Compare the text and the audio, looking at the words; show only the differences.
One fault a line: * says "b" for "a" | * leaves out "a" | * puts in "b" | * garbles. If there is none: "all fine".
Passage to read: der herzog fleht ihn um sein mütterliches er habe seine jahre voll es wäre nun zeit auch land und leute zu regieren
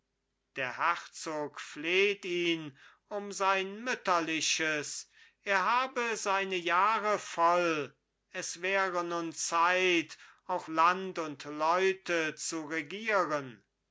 all fine